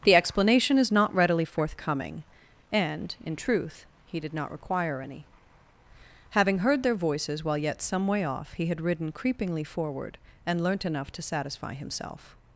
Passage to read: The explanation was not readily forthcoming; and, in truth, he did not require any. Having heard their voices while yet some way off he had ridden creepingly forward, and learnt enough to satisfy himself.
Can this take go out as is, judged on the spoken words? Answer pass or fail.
fail